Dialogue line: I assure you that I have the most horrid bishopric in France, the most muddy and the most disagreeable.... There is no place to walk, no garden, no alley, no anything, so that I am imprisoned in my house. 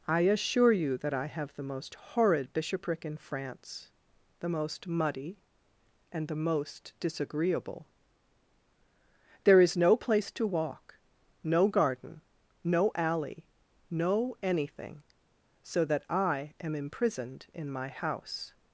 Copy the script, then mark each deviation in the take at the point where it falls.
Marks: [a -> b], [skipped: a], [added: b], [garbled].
I assure you that I have the most horrid bishopric in France, the most muddy and the most disagreeable.... There is no place to walk, no garden, no alley, no anything, so that I am imprisoned in my house.